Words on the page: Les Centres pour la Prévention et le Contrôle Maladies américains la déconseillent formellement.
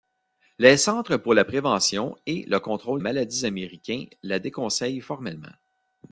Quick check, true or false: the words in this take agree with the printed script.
true